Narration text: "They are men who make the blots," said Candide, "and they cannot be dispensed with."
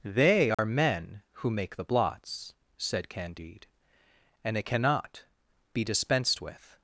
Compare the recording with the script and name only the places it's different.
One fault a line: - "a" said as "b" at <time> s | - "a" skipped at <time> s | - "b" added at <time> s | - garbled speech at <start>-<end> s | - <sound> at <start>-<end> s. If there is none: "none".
- dropout at 0.5-0.6 s
- "they" said as "it" at 4.6 s